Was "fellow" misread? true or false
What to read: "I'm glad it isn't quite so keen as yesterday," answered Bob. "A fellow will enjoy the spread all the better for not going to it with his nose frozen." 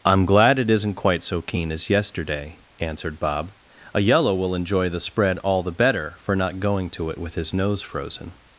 true